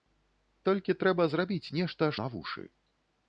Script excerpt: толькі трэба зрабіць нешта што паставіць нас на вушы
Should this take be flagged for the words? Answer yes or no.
yes